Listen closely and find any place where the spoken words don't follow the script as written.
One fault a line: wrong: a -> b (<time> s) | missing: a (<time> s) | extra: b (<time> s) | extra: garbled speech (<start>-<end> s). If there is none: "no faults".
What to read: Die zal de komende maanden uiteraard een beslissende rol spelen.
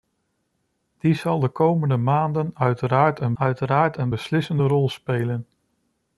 extra: uiteraard een (3.3 s)